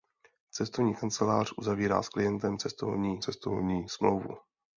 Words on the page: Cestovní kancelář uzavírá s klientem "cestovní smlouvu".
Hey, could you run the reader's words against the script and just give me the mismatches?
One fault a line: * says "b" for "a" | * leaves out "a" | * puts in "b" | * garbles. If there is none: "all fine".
* puts in "cestovní"